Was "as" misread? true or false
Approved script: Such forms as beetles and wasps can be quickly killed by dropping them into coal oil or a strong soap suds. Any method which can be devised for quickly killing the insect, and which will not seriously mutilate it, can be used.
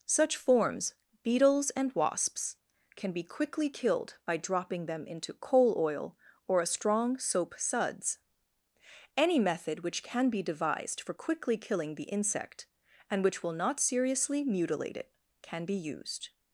true